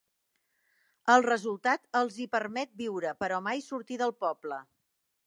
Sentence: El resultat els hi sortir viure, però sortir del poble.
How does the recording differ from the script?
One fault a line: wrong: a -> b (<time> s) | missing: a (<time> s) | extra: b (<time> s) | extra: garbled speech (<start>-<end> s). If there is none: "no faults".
wrong: sortir -> permet (2.4 s)
extra: mai (3.5 s)